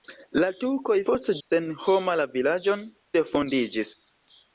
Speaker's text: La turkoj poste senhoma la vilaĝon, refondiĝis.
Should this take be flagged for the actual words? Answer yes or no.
no